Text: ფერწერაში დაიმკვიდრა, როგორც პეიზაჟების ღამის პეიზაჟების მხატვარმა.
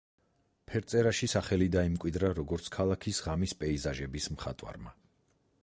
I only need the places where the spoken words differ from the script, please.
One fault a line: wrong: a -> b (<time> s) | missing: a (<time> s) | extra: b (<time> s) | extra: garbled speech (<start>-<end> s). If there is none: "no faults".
extra: სახელი (1.3 s)
wrong: პეიზაჟების -> ქალაქის (2.8 s)